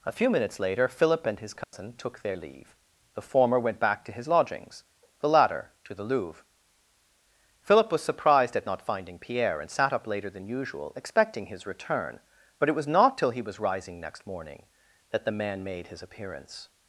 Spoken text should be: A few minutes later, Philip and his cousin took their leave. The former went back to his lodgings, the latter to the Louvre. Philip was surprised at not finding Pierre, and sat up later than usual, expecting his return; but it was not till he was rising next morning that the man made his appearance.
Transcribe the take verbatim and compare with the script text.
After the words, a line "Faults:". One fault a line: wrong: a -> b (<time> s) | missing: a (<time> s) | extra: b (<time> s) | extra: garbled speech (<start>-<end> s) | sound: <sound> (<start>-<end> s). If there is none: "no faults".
A few minutes later, Philip and his cousin took their leave. The former went back to his lodgings, the latter to the Louvre. Philip was surprised at not finding Pierre, and sat up later than usual, expecting his return; but it was not till he was rising next morning that the man made his appearance.
Faults:
sound: dropout (1.6-1.7 s)